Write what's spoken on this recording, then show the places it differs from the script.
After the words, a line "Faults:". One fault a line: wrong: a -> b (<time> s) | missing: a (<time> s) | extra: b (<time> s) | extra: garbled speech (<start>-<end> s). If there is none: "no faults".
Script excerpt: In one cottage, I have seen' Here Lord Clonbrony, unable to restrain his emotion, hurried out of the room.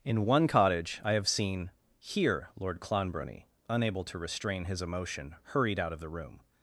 In one cottage, I have seen' Here Lord Clonbrony, unable to restrain his emotion, hurried out of the room.
Faults:
no faults